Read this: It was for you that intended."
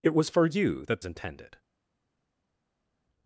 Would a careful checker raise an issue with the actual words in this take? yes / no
no